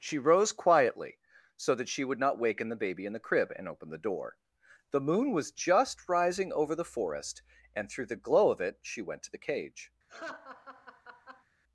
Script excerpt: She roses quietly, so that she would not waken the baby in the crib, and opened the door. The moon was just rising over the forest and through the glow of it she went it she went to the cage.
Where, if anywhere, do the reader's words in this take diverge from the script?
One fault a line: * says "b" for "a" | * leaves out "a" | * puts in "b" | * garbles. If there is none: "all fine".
* says "rose" for "roses"
* leaves out "it she went"